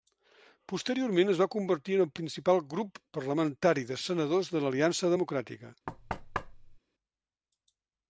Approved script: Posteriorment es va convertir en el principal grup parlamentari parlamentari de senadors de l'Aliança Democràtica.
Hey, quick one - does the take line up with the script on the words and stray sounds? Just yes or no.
no